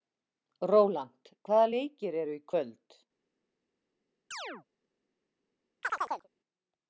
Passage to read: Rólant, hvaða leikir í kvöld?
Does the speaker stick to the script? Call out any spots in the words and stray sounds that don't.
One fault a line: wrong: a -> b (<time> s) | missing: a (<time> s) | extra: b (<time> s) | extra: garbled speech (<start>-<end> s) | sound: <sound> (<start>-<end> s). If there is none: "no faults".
extra: eru (2.2 s)
sound: chirp (4.3-4.6 s)
sound: chirp (5.8-6.3 s)